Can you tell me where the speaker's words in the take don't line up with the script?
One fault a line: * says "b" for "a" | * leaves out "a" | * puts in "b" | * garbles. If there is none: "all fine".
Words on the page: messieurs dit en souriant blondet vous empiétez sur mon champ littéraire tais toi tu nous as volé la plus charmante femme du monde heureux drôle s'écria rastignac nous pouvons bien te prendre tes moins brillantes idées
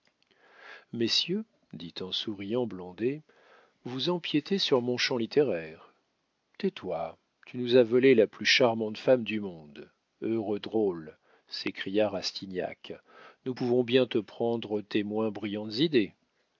all fine